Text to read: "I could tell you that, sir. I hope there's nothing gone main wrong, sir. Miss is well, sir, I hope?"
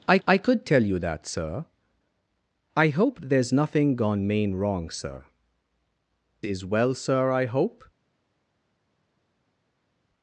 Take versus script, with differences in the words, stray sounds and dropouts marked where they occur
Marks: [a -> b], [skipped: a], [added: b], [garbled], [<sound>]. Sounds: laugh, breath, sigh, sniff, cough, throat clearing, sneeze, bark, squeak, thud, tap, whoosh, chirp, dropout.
"I [added: I] could tell you that, sir. I hope there's nothing gone main wrong, sir. [skipped: Miss] is well, sir, I hope?"